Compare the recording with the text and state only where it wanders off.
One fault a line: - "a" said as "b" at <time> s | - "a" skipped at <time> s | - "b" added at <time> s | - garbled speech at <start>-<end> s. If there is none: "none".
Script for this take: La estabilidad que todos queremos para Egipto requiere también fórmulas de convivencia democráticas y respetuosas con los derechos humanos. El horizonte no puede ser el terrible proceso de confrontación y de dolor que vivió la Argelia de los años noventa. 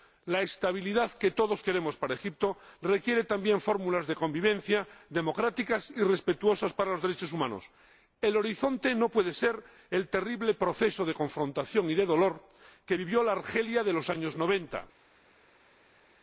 none